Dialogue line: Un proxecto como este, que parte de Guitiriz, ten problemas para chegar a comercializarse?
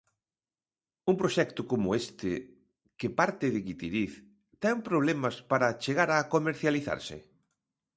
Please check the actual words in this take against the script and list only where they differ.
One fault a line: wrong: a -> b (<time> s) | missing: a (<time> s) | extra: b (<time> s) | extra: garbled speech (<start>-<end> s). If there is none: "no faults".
no faults